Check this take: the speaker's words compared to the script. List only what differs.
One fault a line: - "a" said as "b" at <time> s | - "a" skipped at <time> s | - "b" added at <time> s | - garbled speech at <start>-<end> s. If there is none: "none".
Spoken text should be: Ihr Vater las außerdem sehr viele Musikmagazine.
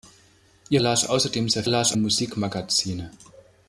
- "Vater" skipped at 0.8 s
- "viele" said as "las" at 1.7 s